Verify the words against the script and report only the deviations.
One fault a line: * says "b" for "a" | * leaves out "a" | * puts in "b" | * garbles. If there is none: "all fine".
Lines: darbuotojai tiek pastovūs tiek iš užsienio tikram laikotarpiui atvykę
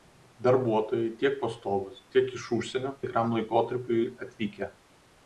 all fine